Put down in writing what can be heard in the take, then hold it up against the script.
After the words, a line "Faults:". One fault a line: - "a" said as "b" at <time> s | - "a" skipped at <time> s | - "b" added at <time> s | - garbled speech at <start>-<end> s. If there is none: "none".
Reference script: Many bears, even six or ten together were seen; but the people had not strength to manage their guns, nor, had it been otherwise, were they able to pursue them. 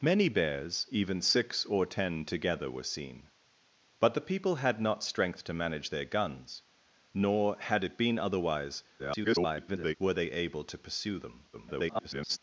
Many bears, even six or ten together were seen; but the people had not strength to manage their guns, nor, had it been otherwise, [garbled] were they able to pursue them. [garbled]
Faults:
- garbled speech at 9.0-10.0 s
- garbled speech at 11.5-12.4 s